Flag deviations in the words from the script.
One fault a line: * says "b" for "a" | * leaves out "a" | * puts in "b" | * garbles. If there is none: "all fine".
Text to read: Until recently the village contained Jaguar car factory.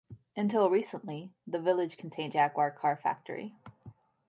all fine